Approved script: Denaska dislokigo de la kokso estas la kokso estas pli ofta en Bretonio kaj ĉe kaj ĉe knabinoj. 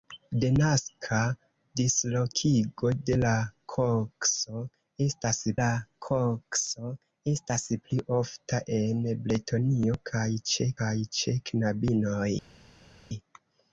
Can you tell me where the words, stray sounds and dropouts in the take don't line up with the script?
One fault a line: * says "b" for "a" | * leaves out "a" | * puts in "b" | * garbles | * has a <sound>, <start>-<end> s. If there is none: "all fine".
all fine